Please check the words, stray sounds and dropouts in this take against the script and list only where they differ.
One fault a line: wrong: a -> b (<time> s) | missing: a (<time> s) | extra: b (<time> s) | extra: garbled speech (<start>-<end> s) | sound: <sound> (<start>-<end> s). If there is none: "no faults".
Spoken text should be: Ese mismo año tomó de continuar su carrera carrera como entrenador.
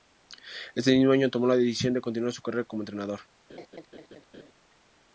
extra: la decisión (1.4 s)
missing: carrera (2.6 s)
sound: laugh (3.5-4.5 s)